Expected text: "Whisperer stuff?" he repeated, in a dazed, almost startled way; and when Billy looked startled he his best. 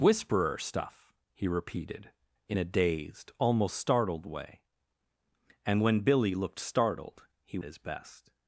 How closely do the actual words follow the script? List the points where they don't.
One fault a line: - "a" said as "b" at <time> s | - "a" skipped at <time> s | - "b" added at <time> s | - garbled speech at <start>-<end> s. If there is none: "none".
none